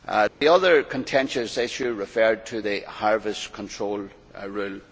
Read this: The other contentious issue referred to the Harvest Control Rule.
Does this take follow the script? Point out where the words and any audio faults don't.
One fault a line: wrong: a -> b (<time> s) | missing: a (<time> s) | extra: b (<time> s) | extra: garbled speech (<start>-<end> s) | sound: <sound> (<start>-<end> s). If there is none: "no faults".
sound: dropout (0.3-0.4 s)